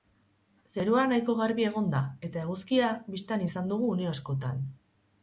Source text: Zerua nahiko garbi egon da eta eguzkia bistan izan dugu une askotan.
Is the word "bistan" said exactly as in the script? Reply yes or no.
yes